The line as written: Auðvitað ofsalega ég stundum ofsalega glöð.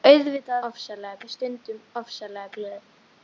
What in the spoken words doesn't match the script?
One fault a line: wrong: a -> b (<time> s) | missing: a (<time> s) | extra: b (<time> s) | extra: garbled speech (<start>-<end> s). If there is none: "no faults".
no faults